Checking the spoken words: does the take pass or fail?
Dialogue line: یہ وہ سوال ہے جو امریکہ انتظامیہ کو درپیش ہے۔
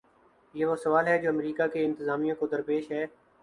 fail